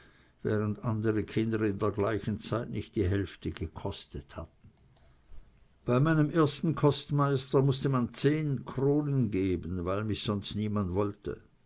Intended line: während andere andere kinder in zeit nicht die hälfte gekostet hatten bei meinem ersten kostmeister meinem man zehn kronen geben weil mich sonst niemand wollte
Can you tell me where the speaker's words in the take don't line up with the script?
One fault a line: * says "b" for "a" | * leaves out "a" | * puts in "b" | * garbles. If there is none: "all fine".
* leaves out "andere"
* puts in "der gleichen"
* says "mußte" for "meinem"